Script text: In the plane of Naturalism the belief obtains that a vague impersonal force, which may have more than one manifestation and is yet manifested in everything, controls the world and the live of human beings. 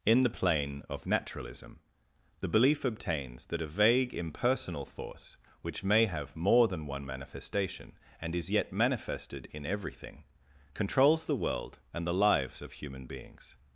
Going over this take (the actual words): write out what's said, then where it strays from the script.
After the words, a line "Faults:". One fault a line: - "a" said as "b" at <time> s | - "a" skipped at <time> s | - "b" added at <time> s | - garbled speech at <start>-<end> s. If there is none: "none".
In the plane of Naturalism the belief obtains that a vague impersonal force, which may have more than one manifestation and is yet manifested in everything, controls the world and the lives of human beings.
Faults:
- "live" said as "lives" at 12.2 s